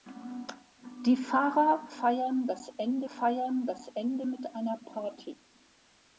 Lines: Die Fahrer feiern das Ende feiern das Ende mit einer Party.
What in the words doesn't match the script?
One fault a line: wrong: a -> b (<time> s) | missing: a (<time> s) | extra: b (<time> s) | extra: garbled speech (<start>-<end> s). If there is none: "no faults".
no faults